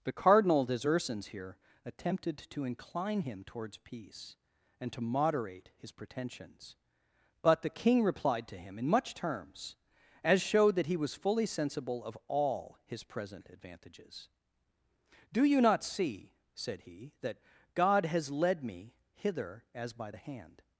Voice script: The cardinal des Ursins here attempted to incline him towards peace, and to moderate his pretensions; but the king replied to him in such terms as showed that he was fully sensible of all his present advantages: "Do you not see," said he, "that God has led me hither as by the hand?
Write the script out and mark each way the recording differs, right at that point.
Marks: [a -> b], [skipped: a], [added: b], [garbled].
The cardinal des Ursins here attempted to incline him towards peace, and to moderate his pretensions; but the king replied to him in [such -> much] terms as showed that he was fully sensible of all his present advantages: "Do you not see," said he, "that God has led me hither as by the hand?